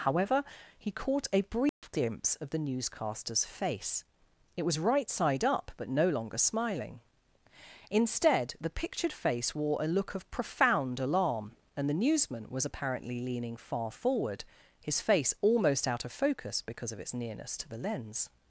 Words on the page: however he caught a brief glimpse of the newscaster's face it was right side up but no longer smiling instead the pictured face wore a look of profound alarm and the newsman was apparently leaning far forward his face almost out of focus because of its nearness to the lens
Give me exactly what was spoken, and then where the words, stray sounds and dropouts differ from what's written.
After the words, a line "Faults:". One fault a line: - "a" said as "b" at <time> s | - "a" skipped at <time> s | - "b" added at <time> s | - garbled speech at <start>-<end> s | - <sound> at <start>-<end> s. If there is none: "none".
however he caught a brief glimpse of the newscaster's face it was right side up but no longer smiling instead the pictured face wore a look of profound alarm and the newsman was apparently leaning far forward his face almost out of focus because of its nearness to the lens
Faults:
- dropout at 1.7-1.8 s